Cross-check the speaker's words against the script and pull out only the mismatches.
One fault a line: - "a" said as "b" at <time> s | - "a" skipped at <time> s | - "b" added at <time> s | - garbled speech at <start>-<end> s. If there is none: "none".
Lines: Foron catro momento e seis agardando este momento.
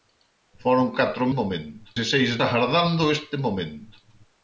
none